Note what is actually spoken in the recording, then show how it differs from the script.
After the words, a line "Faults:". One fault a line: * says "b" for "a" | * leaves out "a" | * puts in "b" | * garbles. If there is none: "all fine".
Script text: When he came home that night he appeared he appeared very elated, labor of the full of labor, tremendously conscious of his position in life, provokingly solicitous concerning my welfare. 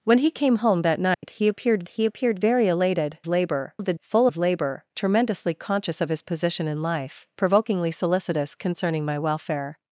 When he came home that night he appeared he appeared very elated, labor of the full of labor, tremendously conscious of his position in life, provokingly solicitous concerning my welfare.
Faults:
all fine